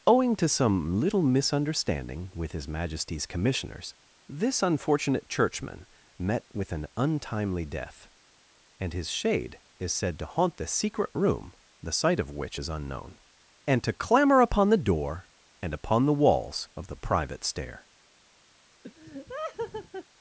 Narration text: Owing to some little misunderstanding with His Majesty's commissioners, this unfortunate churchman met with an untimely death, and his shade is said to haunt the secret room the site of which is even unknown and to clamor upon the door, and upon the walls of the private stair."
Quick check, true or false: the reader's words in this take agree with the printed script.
false